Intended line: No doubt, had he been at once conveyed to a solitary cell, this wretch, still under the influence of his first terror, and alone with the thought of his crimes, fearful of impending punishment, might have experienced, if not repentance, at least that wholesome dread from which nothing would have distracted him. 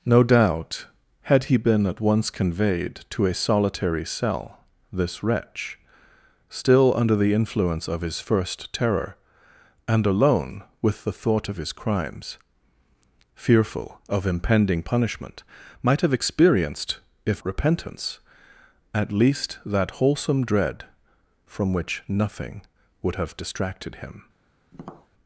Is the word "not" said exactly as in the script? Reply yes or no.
no